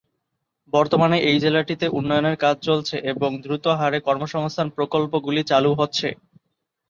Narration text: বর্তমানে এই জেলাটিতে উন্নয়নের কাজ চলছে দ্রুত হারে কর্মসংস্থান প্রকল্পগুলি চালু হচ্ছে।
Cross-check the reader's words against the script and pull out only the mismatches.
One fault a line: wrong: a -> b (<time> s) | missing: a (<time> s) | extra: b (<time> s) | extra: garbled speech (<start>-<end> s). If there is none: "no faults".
extra: এবং (3.1 s)